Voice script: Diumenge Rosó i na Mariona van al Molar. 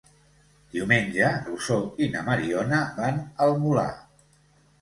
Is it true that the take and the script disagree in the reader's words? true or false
false